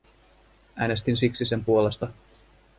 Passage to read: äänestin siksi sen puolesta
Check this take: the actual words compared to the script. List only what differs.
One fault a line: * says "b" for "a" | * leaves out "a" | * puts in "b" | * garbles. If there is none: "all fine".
all fine